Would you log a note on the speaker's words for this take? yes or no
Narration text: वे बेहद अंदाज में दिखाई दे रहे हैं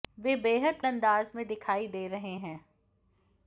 no